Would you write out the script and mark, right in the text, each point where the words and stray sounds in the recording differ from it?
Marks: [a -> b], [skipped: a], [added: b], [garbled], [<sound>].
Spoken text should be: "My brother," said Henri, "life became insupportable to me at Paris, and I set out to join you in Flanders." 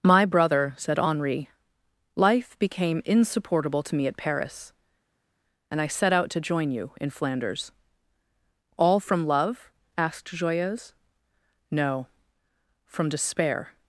"My brother," said Henri, "life became insupportable to me at Paris, and I set out to join you in Flanders." [added: All from love asked Joyeuse No from despair]